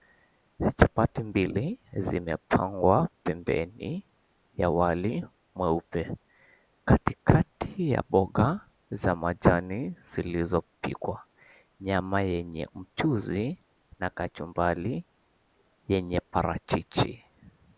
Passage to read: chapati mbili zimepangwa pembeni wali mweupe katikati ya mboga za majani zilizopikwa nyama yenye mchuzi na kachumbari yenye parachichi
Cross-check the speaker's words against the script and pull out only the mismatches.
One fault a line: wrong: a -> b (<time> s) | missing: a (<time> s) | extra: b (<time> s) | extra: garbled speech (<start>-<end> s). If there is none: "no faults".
extra: ya (4.5 s)